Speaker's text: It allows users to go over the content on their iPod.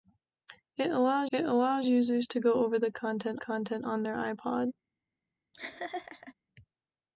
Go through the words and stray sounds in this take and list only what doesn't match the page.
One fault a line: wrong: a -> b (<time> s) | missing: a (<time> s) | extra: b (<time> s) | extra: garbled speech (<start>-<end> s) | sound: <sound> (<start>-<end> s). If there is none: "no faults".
extra: it allows (1.3 s)
extra: content (3.4 s)
sound: laugh (5.5-6.3 s)